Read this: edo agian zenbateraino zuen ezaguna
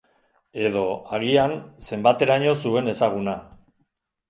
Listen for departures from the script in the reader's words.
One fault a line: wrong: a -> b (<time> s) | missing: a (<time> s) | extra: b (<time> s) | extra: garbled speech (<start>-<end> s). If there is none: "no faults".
no faults